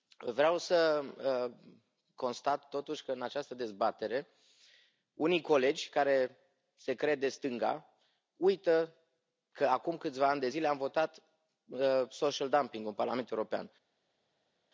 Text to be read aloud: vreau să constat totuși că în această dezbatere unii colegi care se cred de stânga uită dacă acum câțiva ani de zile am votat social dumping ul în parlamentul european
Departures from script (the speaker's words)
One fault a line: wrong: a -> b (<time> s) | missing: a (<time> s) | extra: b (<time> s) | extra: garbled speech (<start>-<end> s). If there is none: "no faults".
wrong: dacă -> că (9.5 s)